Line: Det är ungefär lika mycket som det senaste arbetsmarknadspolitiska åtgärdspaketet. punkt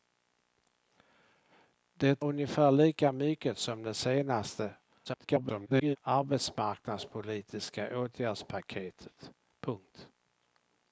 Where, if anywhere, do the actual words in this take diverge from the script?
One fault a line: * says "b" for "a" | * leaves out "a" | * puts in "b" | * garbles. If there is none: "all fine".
* leaves out "är"
* garbles